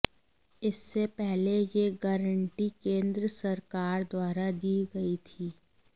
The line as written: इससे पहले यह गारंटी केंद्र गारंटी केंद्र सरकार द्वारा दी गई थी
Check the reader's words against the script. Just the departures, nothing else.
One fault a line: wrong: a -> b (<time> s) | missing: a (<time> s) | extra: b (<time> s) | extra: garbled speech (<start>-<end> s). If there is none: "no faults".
missing: गारंटी केंद्र (3.3 s)